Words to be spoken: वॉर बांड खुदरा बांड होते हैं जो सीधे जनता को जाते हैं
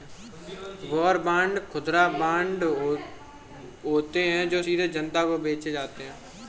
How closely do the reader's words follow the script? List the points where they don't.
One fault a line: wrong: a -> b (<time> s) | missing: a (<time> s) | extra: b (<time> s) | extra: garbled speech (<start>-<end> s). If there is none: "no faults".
extra: बेचे (5.4 s)